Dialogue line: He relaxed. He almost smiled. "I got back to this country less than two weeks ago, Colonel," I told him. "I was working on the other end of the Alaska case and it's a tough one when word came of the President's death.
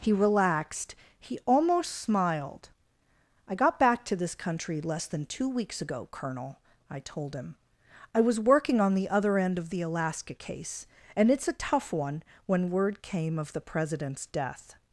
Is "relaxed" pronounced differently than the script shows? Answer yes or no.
no